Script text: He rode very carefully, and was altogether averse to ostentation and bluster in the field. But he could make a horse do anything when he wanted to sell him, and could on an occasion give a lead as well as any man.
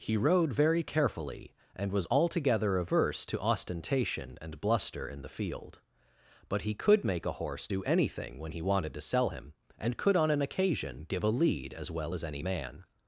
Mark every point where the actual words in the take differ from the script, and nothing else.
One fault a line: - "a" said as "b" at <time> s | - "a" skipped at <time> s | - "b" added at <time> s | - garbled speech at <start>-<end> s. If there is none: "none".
none